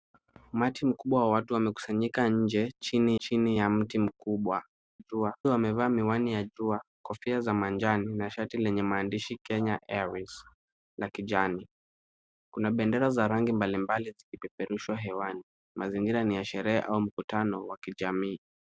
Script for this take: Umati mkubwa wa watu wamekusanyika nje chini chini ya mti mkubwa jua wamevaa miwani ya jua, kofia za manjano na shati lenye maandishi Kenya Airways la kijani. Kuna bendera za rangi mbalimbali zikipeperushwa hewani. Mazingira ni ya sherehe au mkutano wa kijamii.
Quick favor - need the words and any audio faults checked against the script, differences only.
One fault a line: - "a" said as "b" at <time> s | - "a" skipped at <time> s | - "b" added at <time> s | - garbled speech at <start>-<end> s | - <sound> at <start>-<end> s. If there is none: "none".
none